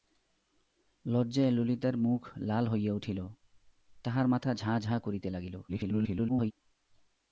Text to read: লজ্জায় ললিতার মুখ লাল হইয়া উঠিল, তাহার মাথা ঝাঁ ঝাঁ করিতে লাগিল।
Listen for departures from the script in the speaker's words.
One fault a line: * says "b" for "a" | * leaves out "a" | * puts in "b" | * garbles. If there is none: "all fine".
* garbles